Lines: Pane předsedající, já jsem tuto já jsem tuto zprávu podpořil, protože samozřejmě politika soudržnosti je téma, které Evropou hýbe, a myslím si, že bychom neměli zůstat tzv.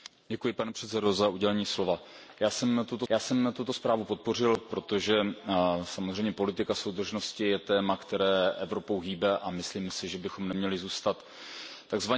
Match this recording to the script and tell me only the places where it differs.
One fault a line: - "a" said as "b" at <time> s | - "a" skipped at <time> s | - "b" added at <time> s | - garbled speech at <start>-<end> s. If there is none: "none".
none